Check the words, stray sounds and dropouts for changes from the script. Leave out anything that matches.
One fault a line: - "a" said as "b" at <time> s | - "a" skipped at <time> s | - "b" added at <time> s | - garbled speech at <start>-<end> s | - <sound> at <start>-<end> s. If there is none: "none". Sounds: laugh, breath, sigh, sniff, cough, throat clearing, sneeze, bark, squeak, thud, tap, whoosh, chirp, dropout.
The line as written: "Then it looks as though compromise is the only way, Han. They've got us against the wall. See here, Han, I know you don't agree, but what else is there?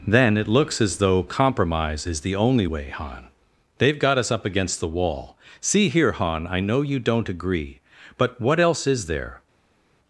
- "up" added at 4.3 s